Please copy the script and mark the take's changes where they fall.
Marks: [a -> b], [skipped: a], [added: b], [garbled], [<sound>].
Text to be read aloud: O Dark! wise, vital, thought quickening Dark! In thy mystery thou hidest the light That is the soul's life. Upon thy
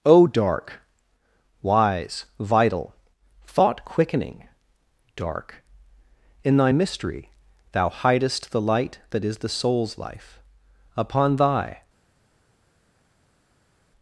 O Dark! wise, vital, thought quickening Dark! In thy mystery thou hidest the light That is the soul's life. Upon thy